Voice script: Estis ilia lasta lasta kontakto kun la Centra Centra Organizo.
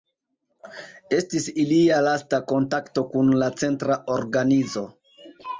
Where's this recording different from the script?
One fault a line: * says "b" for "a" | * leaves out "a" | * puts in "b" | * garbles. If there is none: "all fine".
* leaves out "lasta"
* leaves out "Centra"